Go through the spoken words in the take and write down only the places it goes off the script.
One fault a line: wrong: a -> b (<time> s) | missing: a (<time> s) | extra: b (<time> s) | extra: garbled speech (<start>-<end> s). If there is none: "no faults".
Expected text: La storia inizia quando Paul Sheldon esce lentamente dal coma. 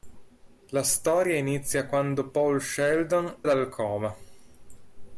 missing: esce lentamente (3.4 s)